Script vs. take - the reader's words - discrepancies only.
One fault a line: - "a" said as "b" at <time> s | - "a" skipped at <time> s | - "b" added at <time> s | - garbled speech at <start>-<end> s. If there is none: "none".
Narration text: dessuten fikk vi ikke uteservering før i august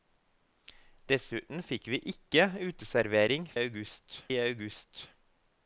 - "før" said as "august" at 3.6 s